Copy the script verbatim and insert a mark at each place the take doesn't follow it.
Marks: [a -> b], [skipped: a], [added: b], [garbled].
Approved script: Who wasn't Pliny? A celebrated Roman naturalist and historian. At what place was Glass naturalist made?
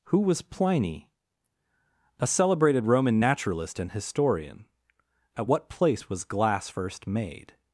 Who [wasn't -> was] Pliny? A celebrated Roman naturalist and historian. At what place was Glass [naturalist -> first] made?